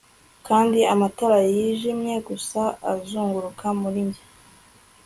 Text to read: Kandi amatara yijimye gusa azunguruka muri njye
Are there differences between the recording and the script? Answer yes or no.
no